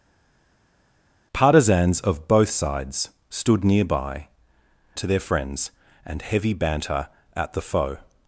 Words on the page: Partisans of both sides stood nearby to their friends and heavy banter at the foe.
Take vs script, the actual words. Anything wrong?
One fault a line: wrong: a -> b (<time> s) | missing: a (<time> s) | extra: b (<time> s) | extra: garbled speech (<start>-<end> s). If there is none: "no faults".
no faults